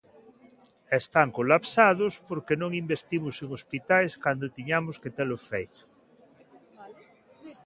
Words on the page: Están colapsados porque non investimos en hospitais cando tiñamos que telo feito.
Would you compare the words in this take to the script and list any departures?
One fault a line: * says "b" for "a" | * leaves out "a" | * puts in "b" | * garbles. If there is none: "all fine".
all fine